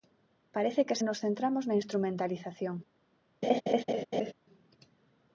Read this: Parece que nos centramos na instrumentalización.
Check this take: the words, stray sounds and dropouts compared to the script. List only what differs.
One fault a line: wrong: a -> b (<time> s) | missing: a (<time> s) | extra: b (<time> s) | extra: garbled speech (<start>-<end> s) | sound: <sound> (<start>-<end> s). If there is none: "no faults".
sound: laugh (3.4-4.3 s)